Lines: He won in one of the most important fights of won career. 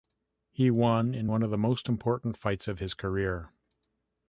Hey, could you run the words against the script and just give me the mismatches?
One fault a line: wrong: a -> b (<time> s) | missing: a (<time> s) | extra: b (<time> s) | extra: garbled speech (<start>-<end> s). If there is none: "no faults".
wrong: won -> his (2.8 s)